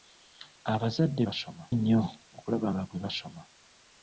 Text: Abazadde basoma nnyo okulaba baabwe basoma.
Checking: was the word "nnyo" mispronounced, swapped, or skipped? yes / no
no